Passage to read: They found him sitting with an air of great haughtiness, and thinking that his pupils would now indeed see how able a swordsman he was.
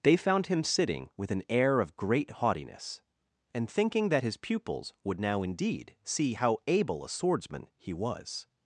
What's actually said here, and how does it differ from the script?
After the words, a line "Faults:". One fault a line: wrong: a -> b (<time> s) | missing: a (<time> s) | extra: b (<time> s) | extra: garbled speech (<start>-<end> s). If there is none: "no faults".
They found him sitting with an air of great haughtiness, and thinking that his pupils would now indeed see how able a swordsman he was.
Faults:
no faults